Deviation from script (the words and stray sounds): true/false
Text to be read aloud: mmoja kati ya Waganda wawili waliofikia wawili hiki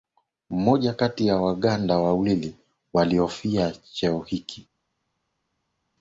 true